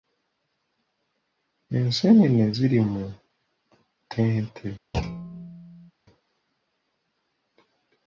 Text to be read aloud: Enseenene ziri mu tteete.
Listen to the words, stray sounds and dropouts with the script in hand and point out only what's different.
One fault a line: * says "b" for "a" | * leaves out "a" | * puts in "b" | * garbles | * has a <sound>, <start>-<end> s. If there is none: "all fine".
* has a thud, 4.9-5.9 s